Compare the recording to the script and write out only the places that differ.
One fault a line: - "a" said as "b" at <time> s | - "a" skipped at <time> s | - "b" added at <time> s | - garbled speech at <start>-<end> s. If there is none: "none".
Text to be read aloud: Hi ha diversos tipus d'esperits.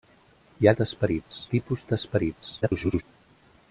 - "diversos" said as "d'esperits" at 0.8 s
- garbled speech at 2.6-3.0 s